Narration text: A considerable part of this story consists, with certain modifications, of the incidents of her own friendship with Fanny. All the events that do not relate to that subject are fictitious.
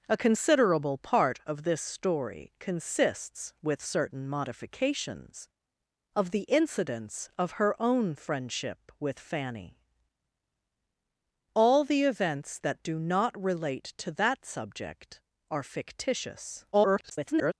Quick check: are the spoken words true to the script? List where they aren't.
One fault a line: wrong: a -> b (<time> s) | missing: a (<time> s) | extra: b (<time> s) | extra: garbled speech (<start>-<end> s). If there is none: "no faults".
extra: garbled speech (16.7-17.5 s)